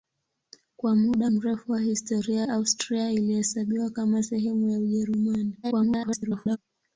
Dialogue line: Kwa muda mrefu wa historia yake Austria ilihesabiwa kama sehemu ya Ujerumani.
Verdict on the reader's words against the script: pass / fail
fail